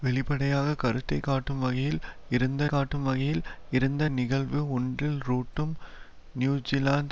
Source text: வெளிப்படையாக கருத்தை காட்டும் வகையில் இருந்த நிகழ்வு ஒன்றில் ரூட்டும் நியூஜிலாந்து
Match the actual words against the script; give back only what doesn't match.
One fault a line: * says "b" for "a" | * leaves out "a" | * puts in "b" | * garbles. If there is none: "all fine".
* puts in "காட்டும் வகையில் இருந்த"